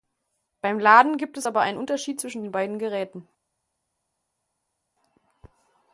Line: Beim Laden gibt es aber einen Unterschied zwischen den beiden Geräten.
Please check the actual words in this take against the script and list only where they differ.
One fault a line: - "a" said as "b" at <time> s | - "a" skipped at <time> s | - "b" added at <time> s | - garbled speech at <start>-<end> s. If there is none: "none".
none